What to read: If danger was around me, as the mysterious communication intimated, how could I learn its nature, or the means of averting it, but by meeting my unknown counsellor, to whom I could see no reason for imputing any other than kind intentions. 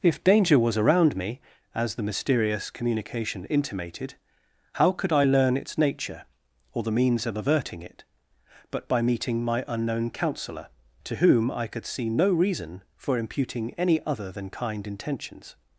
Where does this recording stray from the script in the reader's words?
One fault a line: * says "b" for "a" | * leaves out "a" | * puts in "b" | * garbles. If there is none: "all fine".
all fine